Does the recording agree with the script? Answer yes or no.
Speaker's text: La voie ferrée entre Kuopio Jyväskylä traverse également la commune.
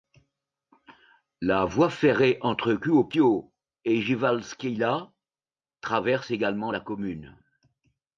no